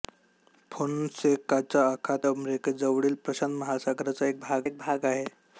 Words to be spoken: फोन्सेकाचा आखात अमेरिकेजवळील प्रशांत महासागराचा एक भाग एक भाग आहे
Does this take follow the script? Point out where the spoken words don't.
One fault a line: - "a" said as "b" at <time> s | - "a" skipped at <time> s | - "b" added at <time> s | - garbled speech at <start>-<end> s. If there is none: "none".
none